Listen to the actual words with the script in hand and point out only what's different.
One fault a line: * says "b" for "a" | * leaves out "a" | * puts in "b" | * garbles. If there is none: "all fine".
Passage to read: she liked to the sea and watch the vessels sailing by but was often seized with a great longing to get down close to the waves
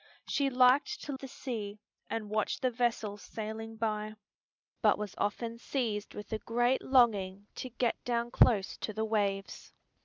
all fine